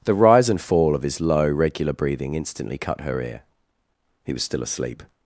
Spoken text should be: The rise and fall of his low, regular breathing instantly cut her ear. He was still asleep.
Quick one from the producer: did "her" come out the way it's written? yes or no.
yes